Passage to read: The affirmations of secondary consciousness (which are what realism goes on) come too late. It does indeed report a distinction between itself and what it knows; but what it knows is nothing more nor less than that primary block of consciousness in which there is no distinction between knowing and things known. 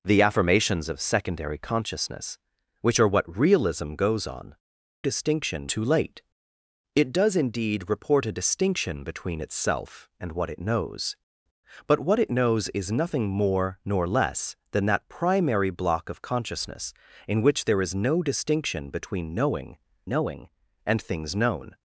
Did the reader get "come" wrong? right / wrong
wrong